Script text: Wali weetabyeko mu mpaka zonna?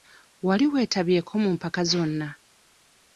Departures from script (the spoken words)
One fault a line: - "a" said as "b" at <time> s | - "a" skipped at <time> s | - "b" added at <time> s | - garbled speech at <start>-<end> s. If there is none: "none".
none